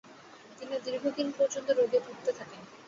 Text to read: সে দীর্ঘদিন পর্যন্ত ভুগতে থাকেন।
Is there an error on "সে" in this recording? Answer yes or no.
yes